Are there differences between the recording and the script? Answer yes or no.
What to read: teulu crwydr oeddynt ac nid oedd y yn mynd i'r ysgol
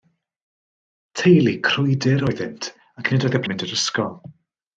no